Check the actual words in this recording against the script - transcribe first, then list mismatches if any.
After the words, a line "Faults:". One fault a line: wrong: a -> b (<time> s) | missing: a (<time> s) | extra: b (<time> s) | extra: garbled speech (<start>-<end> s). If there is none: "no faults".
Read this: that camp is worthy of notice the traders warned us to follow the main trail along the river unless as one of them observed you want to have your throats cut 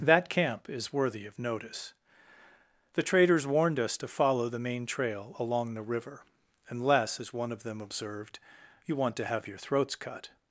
that camp is worthy of notice the traders warned us to follow the main trail along the river unless as one of them observed you want to have your throats cut
Faults:
no faults